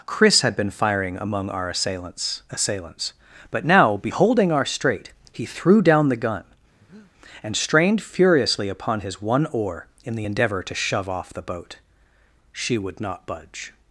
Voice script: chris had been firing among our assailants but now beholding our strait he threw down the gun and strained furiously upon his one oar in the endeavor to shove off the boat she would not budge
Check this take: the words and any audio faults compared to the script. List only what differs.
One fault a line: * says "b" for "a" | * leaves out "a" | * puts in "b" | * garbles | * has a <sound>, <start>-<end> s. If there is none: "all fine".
* puts in "assailants"
* has a breath, 6.8-7.1 s